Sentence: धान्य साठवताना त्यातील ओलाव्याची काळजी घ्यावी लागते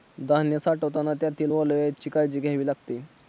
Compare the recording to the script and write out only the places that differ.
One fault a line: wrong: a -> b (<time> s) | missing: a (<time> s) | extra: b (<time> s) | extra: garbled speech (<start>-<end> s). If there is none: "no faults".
no faults